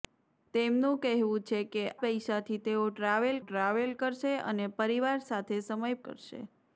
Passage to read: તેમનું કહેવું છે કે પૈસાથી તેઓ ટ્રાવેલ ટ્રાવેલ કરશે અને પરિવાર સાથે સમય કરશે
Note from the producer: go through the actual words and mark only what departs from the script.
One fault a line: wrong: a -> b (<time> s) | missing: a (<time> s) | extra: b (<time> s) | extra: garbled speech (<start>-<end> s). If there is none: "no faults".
no faults